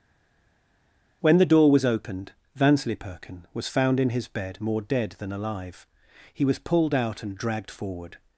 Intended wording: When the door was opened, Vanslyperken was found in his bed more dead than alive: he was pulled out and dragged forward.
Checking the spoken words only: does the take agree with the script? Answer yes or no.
yes